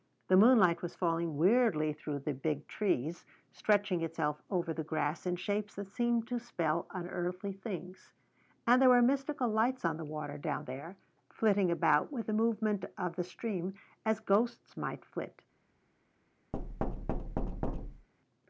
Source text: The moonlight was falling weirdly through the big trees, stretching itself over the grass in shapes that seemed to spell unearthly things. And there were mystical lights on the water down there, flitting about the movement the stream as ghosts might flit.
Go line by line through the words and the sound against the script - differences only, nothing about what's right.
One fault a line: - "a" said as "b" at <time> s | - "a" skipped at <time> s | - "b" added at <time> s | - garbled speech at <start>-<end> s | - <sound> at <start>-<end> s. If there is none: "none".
- "with" added at 12.1 s
- "of" added at 13.0 s
- thud at 16.5-18.1 s